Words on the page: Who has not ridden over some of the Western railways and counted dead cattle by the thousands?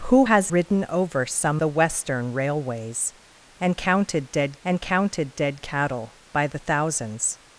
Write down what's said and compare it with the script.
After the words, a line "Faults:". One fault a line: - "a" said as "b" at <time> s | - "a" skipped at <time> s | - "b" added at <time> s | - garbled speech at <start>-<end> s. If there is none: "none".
Who has ridden over some the Western railways and counted dead and counted dead cattle by the thousands?
Faults:
- "not" skipped at 0.5 s
- "of" skipped at 1.6 s
- "and counted dead" added at 4.6 s